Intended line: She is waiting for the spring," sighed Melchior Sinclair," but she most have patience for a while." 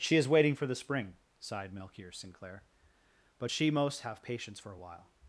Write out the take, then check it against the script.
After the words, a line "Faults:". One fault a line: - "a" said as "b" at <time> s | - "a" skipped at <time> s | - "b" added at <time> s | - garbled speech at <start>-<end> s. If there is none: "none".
She is waiting for the spring," sighed Melchior Sinclair," but she most have patience for a while."
Faults:
none